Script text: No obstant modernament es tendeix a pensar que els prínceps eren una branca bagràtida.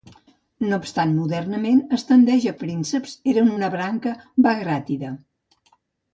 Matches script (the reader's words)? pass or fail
fail